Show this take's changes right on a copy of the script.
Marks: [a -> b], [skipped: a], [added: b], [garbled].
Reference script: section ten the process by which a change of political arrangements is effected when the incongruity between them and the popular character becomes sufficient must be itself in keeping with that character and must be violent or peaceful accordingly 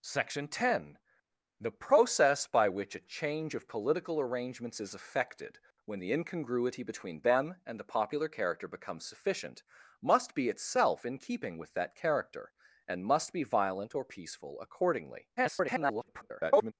section ten the process by which a change of political arrangements is effected when the incongruity between them and the popular character becomes sufficient must be itself in keeping with that character and must be violent or peaceful accordingly [garbled]